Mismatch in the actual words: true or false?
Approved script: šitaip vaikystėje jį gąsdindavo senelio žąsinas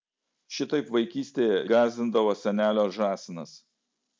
true